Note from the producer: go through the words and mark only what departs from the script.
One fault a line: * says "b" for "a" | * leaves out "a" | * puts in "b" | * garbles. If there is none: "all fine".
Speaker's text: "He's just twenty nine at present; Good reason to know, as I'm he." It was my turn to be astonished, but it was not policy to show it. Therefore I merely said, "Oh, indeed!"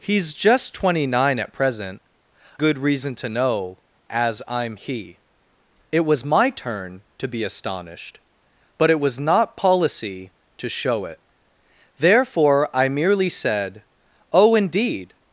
all fine